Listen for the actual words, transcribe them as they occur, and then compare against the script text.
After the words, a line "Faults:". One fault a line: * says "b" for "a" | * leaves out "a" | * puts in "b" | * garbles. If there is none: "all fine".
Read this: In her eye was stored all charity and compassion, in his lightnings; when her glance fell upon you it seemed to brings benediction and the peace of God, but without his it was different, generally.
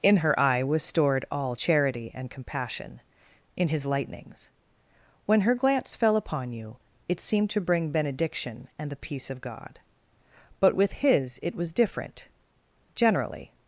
In her eye was stored all charity and compassion, in his lightnings; when her glance fell upon you it seemed to bring benediction and the peace of God, but with his it was different, generally.
Faults:
* says "bring" for "brings"
* says "with" for "without"